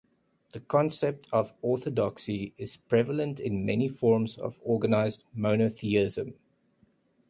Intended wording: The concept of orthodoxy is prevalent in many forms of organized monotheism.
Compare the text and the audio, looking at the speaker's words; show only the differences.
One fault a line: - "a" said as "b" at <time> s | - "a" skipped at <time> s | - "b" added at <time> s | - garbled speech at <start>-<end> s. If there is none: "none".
none